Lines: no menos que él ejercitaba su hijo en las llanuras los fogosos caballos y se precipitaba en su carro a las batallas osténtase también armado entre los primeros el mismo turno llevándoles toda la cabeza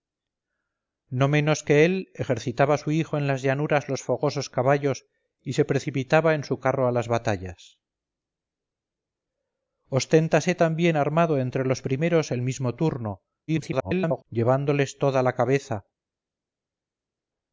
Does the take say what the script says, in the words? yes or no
no